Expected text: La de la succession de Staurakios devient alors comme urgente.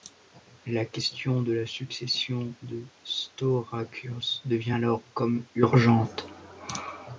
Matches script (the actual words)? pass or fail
fail